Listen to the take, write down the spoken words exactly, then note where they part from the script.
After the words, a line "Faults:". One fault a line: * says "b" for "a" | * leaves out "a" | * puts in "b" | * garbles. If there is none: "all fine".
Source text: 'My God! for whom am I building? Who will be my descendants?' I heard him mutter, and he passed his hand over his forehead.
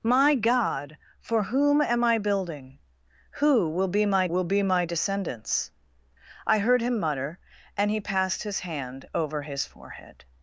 'My God! for whom am I building? Who will be my will be my descendants?' I heard him mutter, and he passed his hand over his forehead.
Faults:
* puts in "will be my"